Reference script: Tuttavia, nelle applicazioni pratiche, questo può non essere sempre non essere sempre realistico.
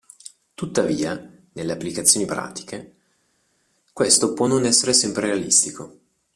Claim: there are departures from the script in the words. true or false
true